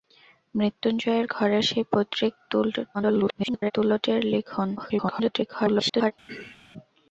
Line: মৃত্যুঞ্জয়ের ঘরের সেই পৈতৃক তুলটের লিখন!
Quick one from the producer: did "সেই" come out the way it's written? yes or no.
yes